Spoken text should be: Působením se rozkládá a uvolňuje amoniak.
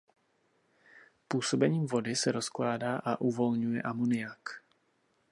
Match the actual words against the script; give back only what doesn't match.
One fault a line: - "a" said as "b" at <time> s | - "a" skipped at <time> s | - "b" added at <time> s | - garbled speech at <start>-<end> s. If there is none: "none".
- "vody" added at 1.9 s